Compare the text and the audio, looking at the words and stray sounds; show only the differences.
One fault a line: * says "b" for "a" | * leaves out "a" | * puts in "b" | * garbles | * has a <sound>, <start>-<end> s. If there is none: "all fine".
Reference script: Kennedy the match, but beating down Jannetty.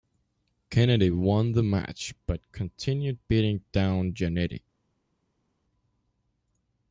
* puts in "won"
* puts in "continued"